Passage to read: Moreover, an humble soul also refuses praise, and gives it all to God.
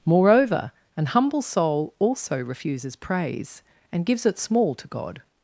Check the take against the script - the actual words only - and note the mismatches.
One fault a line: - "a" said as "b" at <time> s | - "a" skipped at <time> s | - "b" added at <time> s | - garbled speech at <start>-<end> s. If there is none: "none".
- "all" said as "small" at 4.4 s